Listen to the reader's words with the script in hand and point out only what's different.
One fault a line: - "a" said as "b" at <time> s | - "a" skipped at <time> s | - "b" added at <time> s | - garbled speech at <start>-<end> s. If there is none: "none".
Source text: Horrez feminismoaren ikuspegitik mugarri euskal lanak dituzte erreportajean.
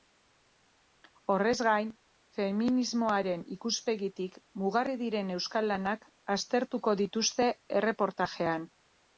- "gain" added at 1.7 s
- "diren" added at 5.0 s
- "aztertuko" added at 6.4 s